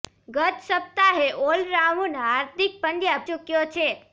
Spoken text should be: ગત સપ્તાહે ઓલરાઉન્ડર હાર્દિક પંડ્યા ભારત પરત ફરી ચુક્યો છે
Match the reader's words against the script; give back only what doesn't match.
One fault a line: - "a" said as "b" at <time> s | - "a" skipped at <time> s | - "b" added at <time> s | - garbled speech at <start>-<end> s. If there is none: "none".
- "ભારત પરત ફરી" skipped at 3.2 s